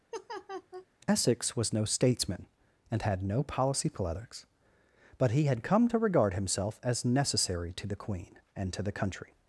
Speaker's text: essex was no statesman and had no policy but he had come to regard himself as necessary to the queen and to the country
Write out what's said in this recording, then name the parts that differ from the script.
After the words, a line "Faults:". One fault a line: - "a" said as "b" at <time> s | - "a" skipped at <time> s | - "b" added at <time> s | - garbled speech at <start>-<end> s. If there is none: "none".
essex was no statesman and had no policy politics but he had come to regard himself as necessary to the queen and to the country
Faults:
- "politics" added at 3.9 s